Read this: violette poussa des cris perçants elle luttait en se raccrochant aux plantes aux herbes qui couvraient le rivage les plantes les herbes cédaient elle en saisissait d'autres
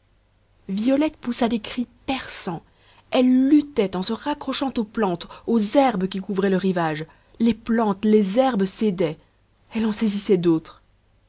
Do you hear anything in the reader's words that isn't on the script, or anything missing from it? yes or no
no